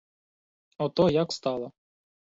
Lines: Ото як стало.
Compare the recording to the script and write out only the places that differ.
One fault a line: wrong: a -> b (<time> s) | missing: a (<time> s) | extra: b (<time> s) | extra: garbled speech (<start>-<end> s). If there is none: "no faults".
no faults